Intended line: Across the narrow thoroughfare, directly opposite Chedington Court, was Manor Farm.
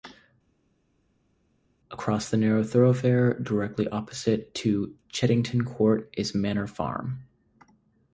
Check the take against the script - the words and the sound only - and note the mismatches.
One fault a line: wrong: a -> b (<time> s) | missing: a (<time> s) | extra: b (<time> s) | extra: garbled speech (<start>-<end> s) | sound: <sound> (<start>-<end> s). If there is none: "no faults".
extra: to (4.6 s)
wrong: was -> is (6.2 s)